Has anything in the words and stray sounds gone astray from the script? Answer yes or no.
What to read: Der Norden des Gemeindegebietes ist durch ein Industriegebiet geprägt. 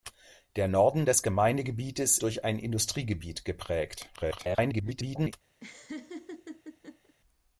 yes